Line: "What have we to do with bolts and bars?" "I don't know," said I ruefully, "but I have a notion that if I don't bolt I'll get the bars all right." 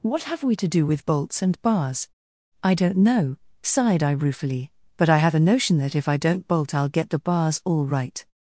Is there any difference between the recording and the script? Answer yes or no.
yes